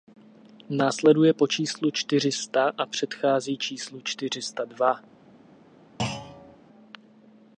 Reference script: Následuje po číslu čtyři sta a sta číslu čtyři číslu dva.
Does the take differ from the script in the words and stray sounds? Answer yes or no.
yes